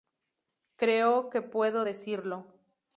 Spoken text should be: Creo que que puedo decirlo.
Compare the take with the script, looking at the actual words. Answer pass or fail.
fail